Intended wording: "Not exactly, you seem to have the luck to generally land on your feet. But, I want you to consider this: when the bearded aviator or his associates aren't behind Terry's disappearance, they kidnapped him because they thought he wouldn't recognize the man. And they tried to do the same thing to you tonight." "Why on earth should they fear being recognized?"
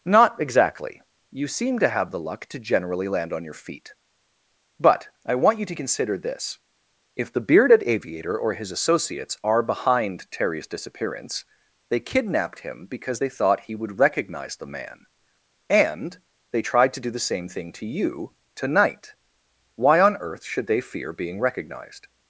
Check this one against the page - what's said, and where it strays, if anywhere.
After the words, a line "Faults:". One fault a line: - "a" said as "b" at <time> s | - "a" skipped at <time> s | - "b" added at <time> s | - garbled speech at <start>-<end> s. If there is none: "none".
"Not exactly, you seem to have the luck to generally land on your feet. But, I want you to consider this: if the bearded aviator or his associates are behind Terry's disappearance, they kidnapped him because they thought he would recognize the man. And they tried to do the same thing to you tonight." "Why on earth should they fear being recognized?"
Faults:
- "when" said as "if" at 7.2 s
- "aren't" said as "are" at 9.4 s
- "wouldn't" said as "would" at 13.8 s